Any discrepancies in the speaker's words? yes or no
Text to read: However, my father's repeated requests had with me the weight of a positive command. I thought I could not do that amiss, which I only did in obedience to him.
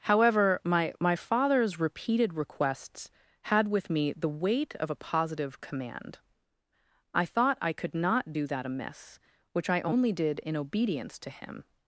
yes